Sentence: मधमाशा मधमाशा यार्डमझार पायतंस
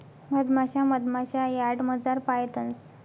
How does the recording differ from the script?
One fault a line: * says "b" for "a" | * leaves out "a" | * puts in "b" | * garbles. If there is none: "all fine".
all fine